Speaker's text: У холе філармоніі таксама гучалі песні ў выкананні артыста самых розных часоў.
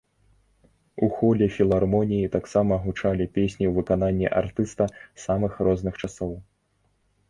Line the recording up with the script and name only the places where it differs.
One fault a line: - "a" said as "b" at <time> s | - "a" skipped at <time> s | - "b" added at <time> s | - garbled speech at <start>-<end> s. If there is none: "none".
none